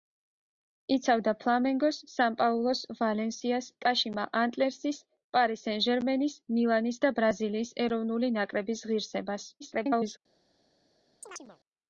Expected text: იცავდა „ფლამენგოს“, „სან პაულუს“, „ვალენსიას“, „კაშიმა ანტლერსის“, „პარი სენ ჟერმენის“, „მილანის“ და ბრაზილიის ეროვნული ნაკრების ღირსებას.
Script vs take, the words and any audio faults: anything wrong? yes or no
yes